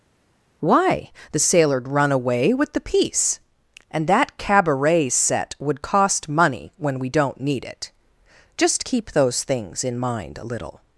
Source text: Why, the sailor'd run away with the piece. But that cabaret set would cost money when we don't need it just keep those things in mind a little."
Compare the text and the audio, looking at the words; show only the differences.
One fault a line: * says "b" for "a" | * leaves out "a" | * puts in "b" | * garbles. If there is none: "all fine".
* says "And" for "But"